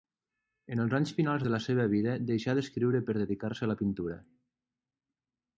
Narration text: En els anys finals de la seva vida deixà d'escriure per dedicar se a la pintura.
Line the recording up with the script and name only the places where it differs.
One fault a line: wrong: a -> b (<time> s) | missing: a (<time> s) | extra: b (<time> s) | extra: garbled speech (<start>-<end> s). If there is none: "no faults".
no faults